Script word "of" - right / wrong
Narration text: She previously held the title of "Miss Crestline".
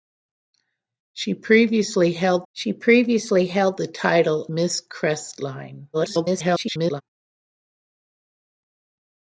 wrong